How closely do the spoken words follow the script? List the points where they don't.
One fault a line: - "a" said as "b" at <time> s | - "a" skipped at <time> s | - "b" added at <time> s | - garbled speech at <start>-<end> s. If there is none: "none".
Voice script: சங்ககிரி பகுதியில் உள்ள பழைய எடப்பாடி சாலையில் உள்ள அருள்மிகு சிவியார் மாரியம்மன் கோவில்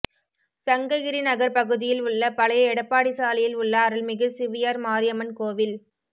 - "நகர்" added at 1.3 s